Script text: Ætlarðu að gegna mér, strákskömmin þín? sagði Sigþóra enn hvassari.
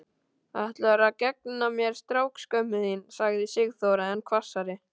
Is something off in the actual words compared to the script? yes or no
no